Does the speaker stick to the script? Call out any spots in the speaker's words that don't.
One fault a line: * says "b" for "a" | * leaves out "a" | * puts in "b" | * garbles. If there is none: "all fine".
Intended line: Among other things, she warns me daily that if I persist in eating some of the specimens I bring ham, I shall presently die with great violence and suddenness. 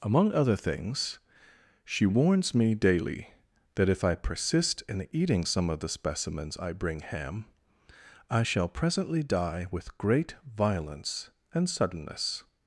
all fine